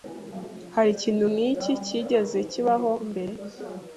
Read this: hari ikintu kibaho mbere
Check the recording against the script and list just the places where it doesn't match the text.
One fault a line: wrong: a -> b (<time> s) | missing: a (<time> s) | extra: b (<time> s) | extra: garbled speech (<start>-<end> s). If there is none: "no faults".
extra: nk'iki cyigeze (1.3 s)